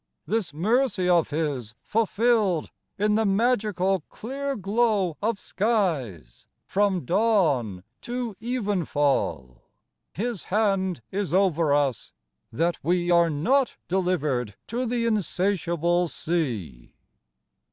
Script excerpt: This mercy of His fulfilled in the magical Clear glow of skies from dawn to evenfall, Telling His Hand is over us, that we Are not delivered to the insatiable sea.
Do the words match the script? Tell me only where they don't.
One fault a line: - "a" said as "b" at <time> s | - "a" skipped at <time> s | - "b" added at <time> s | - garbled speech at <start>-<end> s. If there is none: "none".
- "Telling" skipped at 9.6 s